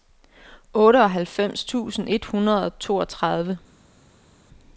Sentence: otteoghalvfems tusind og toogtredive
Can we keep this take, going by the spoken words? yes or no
no